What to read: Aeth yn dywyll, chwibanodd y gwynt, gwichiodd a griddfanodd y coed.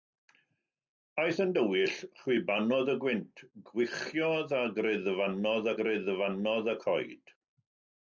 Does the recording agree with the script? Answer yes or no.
no